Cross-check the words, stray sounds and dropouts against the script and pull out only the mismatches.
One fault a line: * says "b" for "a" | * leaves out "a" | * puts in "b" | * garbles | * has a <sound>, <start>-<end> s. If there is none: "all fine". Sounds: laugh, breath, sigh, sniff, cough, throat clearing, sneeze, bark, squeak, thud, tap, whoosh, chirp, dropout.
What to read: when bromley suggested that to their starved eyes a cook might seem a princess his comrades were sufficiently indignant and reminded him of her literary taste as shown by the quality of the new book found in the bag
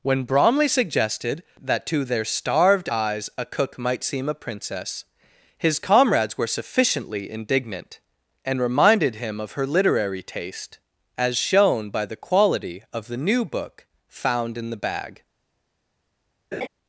* has a laugh, 16.5-16.7 s